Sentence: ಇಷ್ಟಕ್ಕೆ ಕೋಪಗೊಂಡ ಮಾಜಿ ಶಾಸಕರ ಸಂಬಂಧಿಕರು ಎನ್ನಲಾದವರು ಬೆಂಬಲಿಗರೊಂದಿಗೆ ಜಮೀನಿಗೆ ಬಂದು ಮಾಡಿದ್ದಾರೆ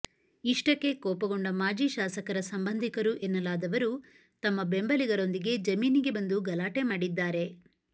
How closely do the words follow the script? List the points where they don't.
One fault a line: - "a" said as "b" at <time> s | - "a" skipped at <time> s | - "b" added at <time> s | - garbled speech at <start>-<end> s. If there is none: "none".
- "ತಮ್ಮ" added at 4.4 s
- "ಗಲಾಟೆ" added at 6.5 s